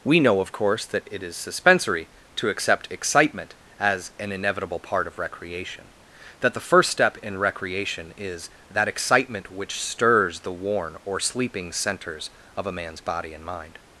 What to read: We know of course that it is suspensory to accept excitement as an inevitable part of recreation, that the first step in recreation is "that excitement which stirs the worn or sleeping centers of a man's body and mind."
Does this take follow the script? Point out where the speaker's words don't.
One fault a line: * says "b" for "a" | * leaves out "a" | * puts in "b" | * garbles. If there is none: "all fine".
all fine